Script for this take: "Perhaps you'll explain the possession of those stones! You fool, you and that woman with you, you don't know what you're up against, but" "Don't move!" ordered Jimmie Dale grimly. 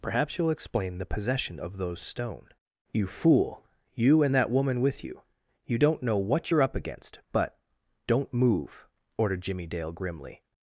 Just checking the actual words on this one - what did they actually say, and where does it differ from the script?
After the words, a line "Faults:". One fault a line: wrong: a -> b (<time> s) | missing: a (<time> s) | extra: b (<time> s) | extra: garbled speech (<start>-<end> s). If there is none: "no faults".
"Perhaps you'll explain the possession of those stone! You fool, you and that woman with you, you don't know what you're up against, but" "Don't move!" ordered Jimmie Dale grimly.
Faults:
wrong: stones -> stone (2.0 s)